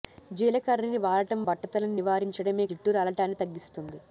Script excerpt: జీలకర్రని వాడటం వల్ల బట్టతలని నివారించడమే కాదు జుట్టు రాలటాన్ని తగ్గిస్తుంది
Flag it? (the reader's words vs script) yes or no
yes